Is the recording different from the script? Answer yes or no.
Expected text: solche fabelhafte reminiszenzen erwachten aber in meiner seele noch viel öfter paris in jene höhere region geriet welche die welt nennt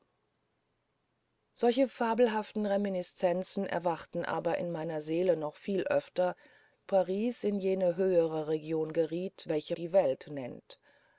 no